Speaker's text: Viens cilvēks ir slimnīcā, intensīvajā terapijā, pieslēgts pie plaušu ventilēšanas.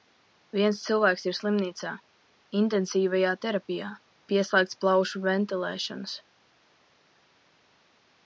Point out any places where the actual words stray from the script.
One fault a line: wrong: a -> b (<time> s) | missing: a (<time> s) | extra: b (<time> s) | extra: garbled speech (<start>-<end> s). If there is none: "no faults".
missing: pie (4.8 s)